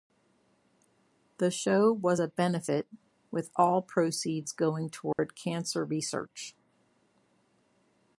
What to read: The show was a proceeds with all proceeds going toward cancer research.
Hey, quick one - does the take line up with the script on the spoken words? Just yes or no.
no